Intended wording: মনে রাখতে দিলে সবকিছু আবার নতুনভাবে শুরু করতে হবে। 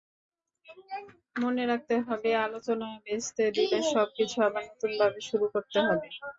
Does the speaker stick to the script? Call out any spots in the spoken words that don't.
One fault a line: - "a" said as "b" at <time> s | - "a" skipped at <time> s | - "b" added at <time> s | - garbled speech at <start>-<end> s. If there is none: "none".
- "হবে আলোচনা ভেস্তে" added at 2.1 s